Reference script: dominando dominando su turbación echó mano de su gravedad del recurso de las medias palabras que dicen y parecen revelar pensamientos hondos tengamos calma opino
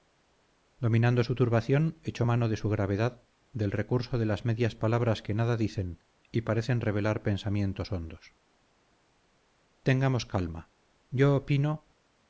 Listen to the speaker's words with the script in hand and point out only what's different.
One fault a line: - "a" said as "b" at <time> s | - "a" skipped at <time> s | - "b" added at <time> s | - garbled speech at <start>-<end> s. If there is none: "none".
- "dominando" skipped at 1.2 s
- "nada" added at 5.3 s
- "yo" added at 11.1 s